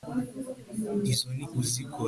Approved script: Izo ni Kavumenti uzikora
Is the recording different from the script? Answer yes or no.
yes